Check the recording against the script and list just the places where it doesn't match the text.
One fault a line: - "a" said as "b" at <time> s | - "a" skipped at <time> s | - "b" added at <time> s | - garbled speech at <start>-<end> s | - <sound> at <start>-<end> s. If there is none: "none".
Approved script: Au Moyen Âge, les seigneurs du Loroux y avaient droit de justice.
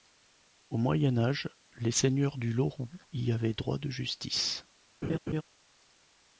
- laugh at 5.0-5.4 s